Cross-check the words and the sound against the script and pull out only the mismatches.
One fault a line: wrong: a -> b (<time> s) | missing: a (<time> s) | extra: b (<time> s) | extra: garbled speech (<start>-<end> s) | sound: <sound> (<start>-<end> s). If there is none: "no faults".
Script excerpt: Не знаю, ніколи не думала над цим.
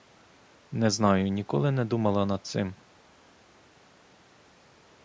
no faults